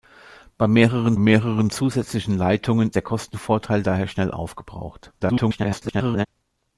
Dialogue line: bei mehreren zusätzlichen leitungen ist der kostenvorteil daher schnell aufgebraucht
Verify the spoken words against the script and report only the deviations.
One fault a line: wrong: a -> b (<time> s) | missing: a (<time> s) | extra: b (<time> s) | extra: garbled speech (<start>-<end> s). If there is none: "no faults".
extra: mehreren (1.2 s)
missing: ist (2.9 s)
extra: garbled speech (5.2-6.3 s)